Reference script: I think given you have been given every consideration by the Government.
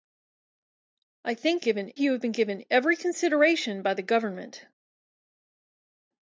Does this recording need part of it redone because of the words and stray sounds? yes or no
no